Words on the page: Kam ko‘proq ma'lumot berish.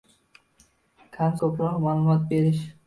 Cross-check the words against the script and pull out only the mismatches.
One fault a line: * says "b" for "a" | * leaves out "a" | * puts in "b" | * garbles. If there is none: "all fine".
all fine